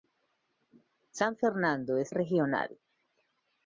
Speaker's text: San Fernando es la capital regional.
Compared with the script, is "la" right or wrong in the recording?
wrong